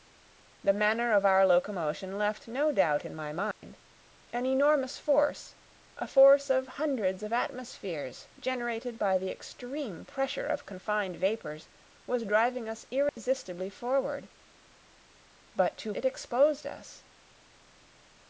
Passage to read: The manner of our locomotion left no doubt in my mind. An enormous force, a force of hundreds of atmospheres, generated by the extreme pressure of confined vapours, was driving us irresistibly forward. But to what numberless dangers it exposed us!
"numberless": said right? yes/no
no